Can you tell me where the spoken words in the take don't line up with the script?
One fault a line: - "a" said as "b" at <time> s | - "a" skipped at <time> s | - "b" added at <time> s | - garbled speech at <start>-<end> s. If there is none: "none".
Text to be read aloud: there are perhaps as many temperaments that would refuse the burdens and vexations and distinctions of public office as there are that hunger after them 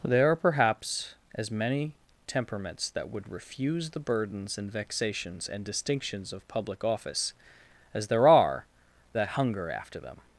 none